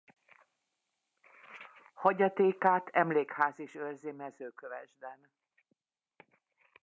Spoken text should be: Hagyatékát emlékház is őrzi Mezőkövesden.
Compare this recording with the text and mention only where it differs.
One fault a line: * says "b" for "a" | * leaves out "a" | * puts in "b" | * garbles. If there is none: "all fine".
all fine